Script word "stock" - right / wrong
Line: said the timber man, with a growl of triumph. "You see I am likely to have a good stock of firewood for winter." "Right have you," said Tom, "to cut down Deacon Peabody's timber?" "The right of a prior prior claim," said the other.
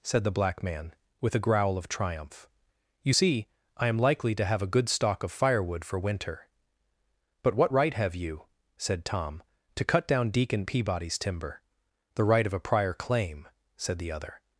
right